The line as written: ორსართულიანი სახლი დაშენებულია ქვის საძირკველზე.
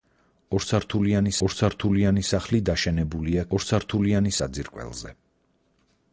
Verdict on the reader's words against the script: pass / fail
fail